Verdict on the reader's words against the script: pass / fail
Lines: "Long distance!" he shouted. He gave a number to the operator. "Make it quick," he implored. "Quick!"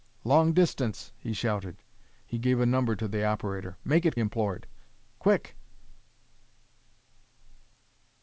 fail